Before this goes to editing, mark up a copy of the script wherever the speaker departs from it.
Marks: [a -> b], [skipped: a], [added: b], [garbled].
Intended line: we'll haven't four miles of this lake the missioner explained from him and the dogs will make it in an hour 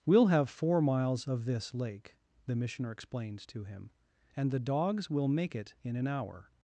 we'll [haven't -> have] four miles of this lake the missioner explained [from -> to] him and the dogs will make it in an hour